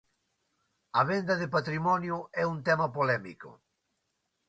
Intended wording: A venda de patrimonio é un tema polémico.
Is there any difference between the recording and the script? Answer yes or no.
no